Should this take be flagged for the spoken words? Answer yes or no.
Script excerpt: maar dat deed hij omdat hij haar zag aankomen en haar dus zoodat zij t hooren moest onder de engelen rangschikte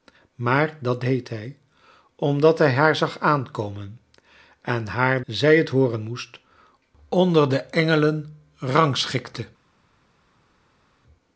yes